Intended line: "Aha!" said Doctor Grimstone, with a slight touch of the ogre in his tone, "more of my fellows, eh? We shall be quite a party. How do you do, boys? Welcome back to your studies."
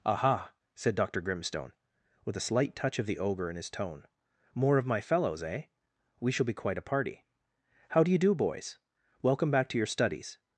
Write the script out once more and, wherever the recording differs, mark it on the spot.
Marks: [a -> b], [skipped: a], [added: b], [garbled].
"Aha!" said Doctor Grimstone, with a slight touch of the ogre in his tone, "more of my fellows, eh? We shall be quite a party. How do you do, boys? Welcome back to your studies."